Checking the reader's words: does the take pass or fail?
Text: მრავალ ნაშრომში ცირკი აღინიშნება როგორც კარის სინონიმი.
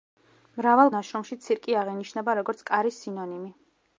pass